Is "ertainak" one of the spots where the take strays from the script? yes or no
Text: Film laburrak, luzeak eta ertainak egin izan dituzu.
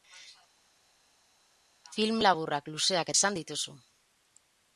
yes